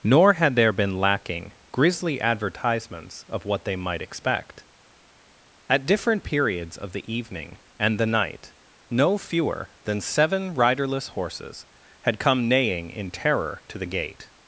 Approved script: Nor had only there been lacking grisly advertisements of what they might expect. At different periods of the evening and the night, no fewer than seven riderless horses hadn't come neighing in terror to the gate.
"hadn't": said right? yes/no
no